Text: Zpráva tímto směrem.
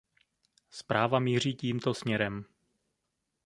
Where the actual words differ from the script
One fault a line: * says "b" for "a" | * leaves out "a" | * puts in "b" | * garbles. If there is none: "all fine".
* puts in "míří"